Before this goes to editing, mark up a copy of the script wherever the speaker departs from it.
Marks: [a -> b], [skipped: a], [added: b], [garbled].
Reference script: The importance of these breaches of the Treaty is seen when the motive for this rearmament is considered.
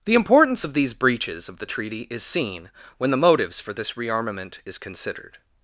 The importance of these breaches of the Treaty is seen when the [motive -> motives] for this rearmament is considered.